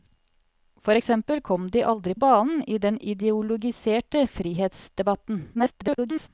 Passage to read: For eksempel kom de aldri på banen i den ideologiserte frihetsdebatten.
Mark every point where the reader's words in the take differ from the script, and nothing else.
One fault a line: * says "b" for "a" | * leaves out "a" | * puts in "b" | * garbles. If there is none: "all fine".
* leaves out "på"
* garbles